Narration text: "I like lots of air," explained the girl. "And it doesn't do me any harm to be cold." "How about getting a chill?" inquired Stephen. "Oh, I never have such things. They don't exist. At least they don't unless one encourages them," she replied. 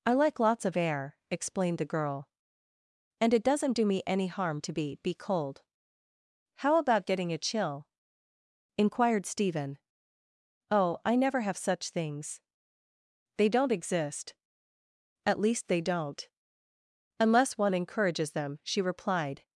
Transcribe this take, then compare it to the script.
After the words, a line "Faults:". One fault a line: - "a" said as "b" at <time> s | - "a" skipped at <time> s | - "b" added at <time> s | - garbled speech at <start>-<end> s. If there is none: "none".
"I like lots of air," explained the girl. "And it doesn't do me any harm to be be cold." "How about getting a chill?" inquired Stephen. "Oh, I never have such things. They don't exist. At least they don't unless one encourages them," she replied.
Faults:
- "be" added at 5.0 s